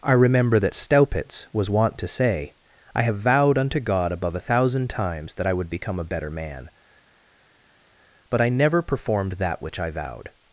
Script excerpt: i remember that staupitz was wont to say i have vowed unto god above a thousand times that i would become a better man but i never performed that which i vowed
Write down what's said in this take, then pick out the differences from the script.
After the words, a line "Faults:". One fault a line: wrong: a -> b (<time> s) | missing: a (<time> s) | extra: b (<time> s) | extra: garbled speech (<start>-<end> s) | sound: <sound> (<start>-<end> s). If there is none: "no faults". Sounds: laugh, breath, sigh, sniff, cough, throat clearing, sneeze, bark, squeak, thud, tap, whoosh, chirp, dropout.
i remember that staupitz was wont to say i have vowed unto god above a thousand times that i would become a better man but i never performed that which i vowed
Faults:
no faults